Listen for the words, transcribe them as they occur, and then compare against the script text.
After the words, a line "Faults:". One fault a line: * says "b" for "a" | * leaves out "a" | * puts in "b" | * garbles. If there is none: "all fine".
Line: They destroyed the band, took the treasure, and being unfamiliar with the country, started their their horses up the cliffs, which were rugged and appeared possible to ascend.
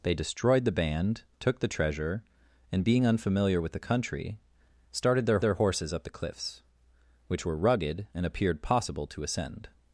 They destroyed the band, took the treasure, and being unfamiliar with the country, started their their horses up the cliffs, which were rugged and appeared possible to ascend.
Faults:
all fine